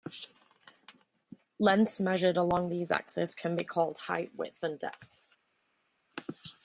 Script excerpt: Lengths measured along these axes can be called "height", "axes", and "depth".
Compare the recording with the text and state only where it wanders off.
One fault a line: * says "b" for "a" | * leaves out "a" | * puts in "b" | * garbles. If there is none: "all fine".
* says "width" for "axes"